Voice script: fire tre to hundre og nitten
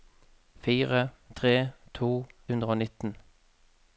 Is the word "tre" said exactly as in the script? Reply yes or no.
yes